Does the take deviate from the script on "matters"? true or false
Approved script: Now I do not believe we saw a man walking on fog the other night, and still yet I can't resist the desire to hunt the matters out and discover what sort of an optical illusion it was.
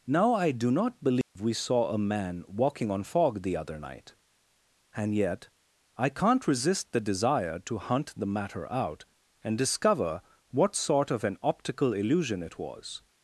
true